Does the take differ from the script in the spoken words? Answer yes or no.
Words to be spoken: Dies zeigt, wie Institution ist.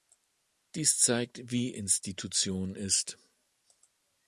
no